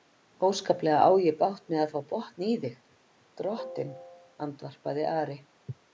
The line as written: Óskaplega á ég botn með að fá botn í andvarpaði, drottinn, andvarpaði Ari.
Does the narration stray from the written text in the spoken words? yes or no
yes